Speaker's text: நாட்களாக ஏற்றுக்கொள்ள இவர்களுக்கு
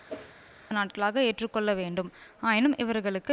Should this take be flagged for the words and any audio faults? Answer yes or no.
yes